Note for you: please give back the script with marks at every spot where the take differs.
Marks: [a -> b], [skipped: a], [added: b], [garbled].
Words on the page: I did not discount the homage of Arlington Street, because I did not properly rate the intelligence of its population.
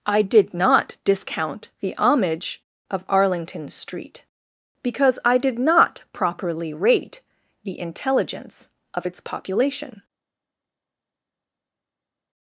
I did not discount the homage of Arlington Street, because I did not properly rate the intelligence of its population.